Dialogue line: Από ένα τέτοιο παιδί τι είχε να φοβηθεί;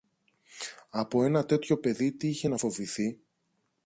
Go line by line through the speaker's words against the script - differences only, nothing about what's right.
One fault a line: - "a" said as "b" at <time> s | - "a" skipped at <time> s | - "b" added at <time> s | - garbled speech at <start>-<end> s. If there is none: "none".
none